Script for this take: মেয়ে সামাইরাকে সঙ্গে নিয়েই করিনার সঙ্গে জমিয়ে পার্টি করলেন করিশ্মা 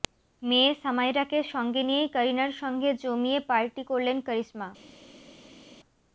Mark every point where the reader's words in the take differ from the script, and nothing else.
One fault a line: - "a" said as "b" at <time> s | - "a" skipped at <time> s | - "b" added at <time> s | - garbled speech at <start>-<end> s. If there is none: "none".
none